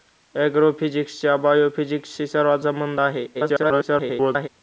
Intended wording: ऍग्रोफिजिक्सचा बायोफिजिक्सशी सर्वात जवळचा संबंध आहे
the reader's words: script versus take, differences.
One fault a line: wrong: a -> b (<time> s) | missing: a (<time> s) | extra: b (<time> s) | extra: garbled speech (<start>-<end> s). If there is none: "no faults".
missing: जवळचा (2.6 s)
extra: garbled speech (3.3-4.5 s)